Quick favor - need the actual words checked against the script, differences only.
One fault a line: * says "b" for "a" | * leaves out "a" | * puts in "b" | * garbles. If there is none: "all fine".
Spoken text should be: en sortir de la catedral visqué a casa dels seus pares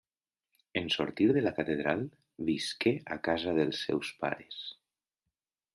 all fine